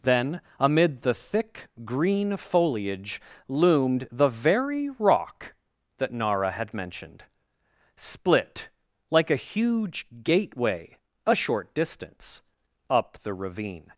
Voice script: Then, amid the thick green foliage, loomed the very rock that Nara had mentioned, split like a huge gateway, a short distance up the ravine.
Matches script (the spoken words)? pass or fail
pass